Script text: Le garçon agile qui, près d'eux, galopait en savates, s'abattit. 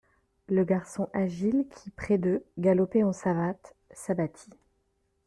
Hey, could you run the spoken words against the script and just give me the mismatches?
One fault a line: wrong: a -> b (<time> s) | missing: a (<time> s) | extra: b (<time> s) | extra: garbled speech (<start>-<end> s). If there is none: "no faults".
no faults